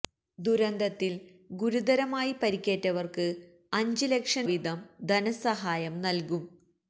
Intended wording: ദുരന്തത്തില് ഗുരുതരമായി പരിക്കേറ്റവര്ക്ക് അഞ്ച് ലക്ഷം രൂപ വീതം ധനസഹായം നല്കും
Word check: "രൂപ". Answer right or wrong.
wrong